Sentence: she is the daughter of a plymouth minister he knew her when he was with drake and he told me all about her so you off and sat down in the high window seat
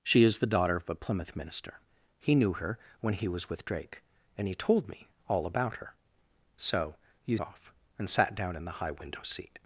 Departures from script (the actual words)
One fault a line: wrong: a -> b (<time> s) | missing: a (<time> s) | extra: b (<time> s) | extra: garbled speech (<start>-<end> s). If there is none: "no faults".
no faults